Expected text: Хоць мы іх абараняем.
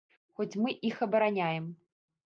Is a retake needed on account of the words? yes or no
no